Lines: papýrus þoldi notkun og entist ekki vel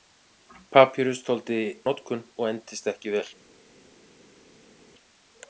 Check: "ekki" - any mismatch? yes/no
no